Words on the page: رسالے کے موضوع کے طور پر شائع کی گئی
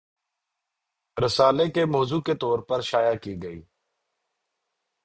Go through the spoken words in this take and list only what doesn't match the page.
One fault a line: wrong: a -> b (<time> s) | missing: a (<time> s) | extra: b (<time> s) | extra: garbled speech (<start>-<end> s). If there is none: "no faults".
no faults